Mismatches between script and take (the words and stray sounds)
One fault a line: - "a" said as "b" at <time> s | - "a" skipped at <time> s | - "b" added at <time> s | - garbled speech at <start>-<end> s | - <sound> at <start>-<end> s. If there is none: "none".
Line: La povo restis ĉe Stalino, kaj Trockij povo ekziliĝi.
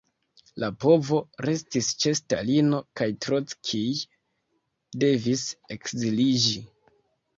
- "povo" said as "devis" at 5.0 s